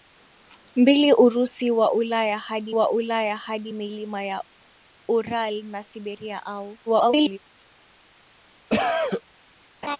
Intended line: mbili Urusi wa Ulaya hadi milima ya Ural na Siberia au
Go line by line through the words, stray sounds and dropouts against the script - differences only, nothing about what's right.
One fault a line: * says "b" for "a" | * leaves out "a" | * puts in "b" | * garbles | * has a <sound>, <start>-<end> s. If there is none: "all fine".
* puts in "wa Ulaya hadi"
* garbles
* has a cough, 8.7-9.2 s
* has a laugh, 9.8-10.0 s